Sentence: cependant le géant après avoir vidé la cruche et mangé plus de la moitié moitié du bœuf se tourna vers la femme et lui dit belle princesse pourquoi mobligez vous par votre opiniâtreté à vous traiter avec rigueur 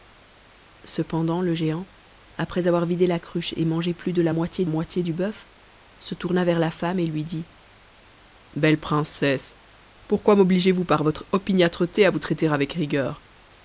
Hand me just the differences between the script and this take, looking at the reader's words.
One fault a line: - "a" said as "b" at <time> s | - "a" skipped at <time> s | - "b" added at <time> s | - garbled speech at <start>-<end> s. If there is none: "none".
none